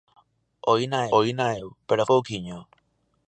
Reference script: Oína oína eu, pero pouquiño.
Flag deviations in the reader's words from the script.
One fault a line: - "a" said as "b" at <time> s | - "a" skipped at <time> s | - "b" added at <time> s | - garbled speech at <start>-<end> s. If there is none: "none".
none